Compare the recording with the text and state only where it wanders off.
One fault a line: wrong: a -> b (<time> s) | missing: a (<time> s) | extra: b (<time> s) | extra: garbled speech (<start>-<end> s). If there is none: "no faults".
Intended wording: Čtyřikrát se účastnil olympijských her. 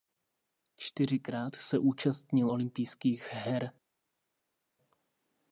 no faults